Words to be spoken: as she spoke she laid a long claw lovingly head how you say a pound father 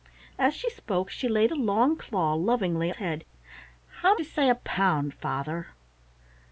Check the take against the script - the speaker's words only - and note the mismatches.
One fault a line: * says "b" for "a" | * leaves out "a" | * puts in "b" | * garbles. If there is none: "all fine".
all fine